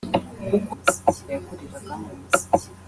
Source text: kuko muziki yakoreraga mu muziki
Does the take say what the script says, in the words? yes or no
yes